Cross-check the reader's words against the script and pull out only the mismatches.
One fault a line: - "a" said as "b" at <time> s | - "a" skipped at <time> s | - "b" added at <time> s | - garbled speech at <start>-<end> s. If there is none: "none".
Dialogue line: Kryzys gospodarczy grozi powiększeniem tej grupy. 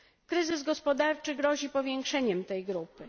none